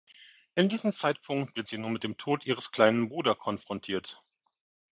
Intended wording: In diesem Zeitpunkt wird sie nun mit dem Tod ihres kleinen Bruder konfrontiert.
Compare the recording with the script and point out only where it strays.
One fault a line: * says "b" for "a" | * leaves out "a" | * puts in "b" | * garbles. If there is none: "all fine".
all fine